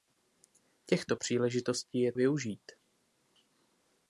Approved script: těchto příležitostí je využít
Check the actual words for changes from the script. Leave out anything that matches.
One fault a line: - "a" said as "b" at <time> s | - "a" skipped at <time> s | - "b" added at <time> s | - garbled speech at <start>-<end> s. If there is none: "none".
none